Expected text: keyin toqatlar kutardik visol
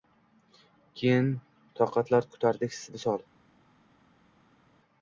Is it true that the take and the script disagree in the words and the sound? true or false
false